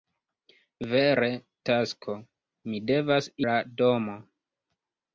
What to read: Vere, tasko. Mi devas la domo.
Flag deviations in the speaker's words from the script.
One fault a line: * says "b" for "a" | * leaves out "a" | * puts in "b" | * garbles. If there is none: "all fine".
all fine